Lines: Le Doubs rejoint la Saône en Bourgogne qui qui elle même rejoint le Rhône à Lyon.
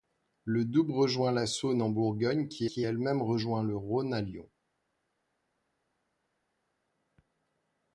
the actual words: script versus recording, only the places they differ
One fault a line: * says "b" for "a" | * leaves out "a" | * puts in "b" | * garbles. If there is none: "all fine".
all fine